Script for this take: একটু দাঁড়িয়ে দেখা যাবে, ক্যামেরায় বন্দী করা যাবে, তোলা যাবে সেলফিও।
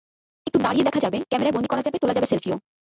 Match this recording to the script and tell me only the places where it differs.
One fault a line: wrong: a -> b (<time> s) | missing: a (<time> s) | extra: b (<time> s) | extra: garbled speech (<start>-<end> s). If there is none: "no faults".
no faults